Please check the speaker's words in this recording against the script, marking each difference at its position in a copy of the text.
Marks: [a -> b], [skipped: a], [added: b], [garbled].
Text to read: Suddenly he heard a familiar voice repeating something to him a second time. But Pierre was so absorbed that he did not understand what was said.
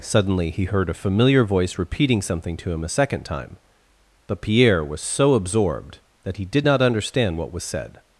Suddenly he heard a familiar voice repeating something to him a second time. But Pierre was so absorbed that he did not understand what was said.